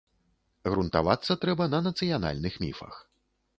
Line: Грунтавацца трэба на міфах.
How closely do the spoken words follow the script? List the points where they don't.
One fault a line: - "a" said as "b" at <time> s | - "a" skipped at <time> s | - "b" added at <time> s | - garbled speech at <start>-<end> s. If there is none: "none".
- "нацыянальных" added at 1.9 s